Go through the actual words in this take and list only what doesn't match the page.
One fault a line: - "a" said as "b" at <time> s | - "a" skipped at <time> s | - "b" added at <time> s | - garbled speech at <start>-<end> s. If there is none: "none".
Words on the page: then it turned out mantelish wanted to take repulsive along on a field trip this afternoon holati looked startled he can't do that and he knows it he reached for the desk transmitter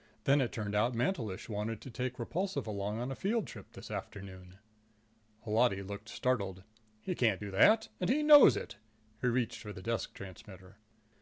none